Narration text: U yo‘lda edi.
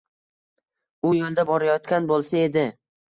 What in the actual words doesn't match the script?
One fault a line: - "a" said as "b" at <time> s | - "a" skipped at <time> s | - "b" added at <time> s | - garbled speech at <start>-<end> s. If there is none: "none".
- "borayotgan bo‘lsa" added at 1.5 s